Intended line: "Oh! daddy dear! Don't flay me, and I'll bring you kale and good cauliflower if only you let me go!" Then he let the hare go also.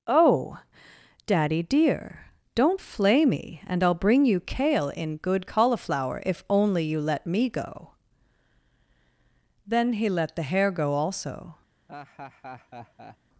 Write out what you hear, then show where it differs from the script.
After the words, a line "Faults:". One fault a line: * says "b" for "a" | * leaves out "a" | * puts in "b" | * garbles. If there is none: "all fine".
"Oh! daddy dear! Don't flay me, and I'll bring you kale in good cauliflower if only you let me go!" Then he let the hare go also.
Faults:
* says "in" for "and"